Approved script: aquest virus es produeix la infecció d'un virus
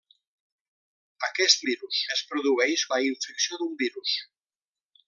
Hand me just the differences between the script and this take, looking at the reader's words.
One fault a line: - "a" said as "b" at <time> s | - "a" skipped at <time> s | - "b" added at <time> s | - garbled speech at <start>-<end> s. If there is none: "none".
none